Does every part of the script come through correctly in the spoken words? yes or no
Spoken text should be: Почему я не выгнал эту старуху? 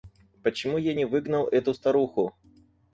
yes